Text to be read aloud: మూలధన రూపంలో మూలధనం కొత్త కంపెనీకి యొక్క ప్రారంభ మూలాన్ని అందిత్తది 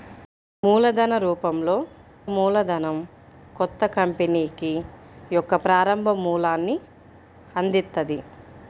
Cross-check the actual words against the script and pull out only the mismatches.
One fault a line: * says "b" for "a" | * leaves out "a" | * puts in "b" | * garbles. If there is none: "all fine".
all fine